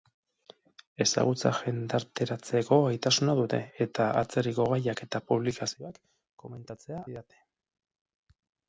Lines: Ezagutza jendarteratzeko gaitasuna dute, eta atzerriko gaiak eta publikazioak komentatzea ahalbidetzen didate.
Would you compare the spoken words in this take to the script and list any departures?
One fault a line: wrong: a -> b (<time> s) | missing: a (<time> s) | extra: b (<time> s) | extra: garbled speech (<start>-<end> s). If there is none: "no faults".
missing: ahalbidetzen (7.0 s)